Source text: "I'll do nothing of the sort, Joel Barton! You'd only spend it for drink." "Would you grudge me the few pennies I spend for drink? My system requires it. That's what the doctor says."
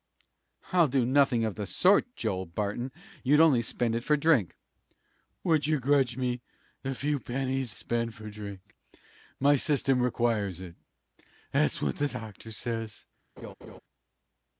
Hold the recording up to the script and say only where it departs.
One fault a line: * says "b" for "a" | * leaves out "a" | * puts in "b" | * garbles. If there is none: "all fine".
* leaves out "I"